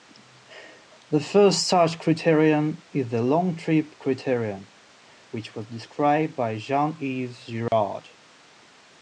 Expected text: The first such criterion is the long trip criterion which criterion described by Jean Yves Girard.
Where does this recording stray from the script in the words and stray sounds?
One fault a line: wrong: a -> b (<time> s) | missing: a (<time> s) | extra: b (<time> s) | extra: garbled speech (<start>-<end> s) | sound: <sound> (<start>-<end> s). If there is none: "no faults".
wrong: criterion -> was (5.5 s)
sound: dropout (7.7-7.7 s)